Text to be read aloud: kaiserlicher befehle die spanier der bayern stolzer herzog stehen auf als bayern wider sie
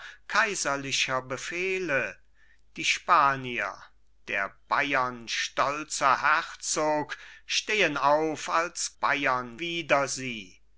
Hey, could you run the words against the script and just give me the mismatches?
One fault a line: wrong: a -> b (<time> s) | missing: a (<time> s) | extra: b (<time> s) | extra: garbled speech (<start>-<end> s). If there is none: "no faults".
no faults